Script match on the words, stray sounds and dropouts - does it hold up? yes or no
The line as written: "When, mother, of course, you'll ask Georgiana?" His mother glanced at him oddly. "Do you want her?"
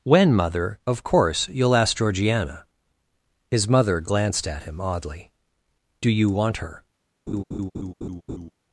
no